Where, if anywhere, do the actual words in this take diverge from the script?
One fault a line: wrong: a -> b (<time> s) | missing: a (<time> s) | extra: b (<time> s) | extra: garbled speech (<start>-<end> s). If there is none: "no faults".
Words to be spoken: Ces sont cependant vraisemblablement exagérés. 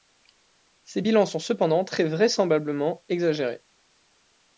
extra: bilans (1.0 s)
extra: très (1.8 s)